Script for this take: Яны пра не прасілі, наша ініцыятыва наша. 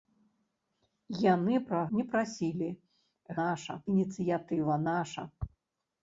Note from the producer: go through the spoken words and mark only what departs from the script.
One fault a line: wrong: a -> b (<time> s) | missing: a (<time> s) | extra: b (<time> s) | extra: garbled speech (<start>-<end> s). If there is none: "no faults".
no faults